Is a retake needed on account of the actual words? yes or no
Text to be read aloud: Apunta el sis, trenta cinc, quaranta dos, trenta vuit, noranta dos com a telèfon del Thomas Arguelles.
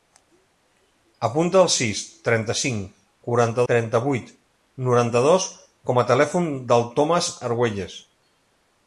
yes